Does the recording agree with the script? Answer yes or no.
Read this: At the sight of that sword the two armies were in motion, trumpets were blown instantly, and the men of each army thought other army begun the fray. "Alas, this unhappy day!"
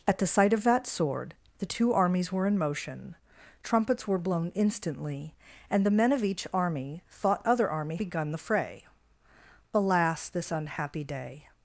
yes